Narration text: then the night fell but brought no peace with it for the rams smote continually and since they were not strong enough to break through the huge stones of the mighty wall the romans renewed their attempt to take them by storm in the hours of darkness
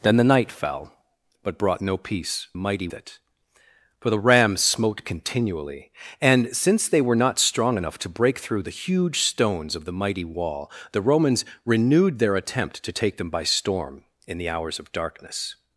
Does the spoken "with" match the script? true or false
false